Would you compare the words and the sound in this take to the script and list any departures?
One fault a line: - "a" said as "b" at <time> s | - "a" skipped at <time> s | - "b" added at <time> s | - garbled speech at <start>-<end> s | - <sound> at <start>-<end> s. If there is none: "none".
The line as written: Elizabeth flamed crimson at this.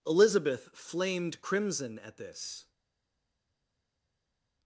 none